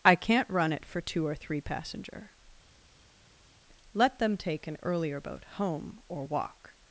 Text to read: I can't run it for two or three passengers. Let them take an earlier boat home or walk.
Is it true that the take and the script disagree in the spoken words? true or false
true